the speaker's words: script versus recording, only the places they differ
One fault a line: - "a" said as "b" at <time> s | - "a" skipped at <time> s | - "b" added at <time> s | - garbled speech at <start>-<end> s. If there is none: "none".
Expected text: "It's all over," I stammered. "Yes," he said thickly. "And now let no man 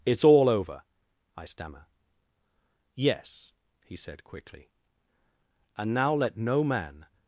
- "stammered" said as "stammer" at 1.4 s
- "thickly" said as "quickly" at 4.2 s